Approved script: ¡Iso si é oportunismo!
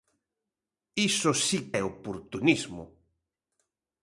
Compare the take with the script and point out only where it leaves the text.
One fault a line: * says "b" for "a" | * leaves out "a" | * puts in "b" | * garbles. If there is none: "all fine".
all fine